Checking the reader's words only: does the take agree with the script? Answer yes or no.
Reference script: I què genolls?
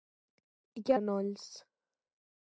yes